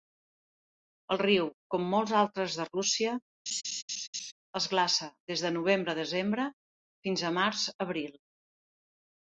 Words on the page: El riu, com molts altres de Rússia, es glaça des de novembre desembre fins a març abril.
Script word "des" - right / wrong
right